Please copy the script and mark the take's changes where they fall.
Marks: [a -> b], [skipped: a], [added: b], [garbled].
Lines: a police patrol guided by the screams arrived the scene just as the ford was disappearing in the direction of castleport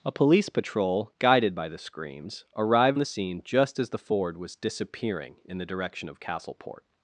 a police patrol guided by the screams arrived the scene just as the ford was disappearing in the direction of castleport